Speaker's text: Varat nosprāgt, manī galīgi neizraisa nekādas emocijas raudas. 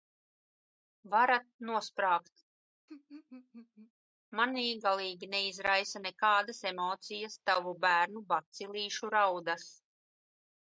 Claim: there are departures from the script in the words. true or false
true